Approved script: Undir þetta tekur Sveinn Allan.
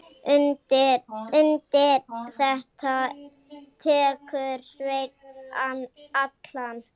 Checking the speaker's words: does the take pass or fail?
fail